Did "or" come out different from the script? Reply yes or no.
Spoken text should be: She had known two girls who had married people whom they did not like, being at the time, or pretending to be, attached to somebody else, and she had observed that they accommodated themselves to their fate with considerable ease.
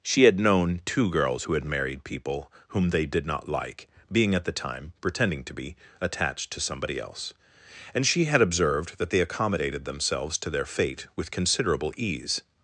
yes